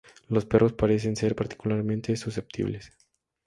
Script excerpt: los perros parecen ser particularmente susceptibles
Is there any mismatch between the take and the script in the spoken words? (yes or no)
no